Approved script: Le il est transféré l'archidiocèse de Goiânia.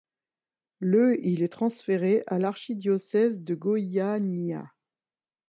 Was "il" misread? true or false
false